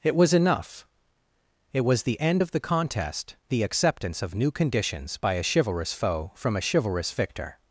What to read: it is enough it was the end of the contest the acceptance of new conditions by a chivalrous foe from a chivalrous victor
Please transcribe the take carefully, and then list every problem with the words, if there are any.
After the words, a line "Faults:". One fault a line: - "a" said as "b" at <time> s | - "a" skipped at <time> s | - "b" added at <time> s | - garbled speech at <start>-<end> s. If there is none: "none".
it was enough it was the end of the contest the acceptance of new conditions by a chivalrous foe from a chivalrous victor
Faults:
- "is" said as "was" at 0.1 s